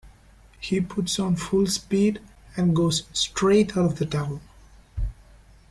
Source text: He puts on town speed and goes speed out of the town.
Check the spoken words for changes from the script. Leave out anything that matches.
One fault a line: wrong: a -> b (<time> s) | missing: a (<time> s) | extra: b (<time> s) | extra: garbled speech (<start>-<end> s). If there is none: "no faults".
wrong: town -> full (1.4 s)
wrong: speed -> straight (3.1 s)